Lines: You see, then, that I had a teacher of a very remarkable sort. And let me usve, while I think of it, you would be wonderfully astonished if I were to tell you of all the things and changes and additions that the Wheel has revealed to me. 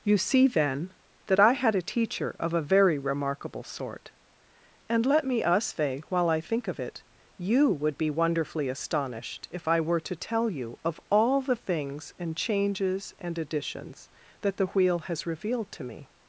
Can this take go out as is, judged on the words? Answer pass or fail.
pass